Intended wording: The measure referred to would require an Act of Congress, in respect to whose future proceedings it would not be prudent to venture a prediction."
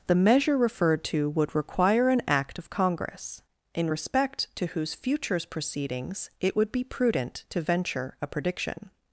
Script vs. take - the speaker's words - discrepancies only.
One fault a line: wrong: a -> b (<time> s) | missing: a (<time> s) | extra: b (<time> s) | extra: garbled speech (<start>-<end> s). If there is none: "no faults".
wrong: future -> futures (4.9 s)
missing: not (6.7 s)